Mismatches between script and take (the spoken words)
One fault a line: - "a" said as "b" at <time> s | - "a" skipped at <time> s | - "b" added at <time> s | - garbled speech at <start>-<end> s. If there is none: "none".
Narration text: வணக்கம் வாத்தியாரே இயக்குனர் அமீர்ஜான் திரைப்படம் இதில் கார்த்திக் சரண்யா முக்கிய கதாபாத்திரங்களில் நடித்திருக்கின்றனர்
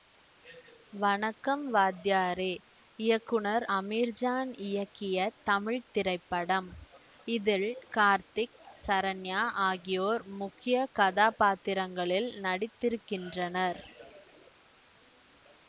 - "இயக்கிய தமிழ்" added at 4.7 s
- "ஆகியோர்" added at 9.7 s